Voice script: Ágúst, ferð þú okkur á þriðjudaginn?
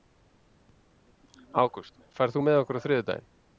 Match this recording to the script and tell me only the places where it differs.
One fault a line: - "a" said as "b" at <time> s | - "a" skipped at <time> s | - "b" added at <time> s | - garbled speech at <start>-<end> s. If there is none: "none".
- "með" added at 2.5 s